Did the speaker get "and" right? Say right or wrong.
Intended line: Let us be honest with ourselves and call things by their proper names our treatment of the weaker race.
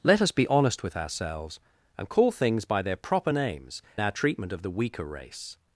right